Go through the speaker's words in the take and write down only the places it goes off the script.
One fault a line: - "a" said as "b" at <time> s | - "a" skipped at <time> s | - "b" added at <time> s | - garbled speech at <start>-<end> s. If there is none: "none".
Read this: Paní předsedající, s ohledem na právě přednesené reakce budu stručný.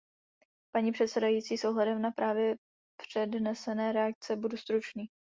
none